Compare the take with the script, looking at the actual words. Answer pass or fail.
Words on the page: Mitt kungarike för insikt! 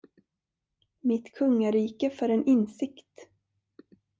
fail